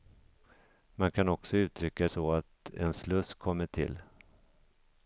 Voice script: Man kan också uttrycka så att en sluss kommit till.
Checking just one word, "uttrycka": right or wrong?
right